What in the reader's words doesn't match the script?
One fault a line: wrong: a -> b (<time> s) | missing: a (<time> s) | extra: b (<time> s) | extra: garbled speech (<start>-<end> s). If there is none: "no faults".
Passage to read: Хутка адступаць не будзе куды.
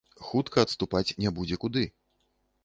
no faults